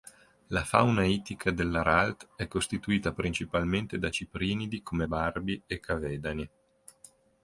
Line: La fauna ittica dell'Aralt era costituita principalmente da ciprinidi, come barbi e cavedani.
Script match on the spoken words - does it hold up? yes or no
no